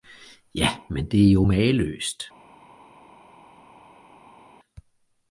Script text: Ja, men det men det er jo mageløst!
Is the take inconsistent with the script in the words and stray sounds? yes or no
yes